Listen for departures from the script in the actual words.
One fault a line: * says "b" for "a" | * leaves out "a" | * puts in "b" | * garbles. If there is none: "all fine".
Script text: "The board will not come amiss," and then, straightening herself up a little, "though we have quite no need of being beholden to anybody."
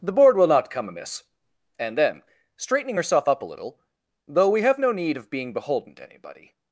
* leaves out "quite"